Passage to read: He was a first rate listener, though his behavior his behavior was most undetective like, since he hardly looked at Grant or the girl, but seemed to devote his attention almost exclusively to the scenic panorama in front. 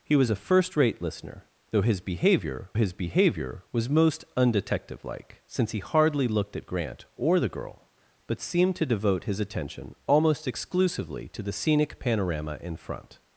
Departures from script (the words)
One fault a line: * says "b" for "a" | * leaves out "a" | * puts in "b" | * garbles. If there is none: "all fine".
all fine